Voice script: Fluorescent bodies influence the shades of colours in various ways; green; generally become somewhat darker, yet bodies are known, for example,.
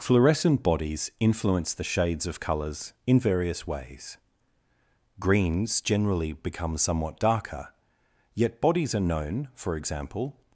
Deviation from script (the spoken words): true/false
true